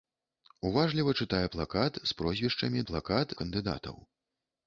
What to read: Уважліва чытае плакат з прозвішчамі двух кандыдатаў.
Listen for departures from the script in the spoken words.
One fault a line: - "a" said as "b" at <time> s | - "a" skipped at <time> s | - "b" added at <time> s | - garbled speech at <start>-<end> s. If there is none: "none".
- "двух" said as "плакат" at 2.9 s